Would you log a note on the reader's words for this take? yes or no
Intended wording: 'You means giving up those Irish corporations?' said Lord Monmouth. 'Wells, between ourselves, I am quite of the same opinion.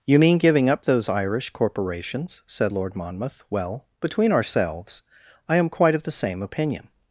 yes